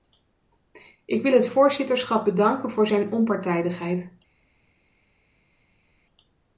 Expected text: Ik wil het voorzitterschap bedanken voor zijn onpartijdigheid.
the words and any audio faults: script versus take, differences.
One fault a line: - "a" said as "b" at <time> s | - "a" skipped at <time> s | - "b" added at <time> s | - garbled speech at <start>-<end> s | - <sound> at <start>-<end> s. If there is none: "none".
none